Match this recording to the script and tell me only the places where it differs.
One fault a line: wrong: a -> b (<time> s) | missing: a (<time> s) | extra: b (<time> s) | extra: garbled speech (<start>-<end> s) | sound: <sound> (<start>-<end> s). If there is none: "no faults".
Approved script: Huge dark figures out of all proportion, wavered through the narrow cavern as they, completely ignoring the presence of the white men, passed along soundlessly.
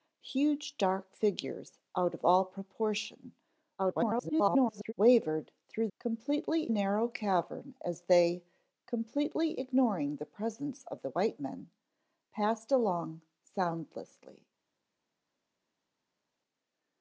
extra: garbled speech (3.8-4.9 s)
wrong: the -> completely (6.0 s)